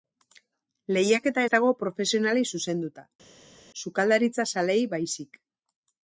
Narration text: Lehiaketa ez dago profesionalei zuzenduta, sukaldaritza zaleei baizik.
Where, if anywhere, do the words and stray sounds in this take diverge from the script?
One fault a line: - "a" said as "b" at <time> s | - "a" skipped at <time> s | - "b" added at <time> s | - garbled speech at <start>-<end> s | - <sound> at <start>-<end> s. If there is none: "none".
none